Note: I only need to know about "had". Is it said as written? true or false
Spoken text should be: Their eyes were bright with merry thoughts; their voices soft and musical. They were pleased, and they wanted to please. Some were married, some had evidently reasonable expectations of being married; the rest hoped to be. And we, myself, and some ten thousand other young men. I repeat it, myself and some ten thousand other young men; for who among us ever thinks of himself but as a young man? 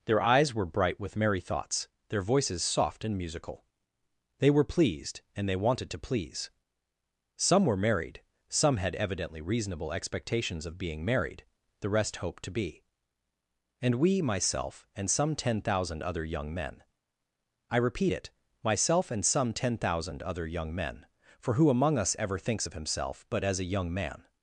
true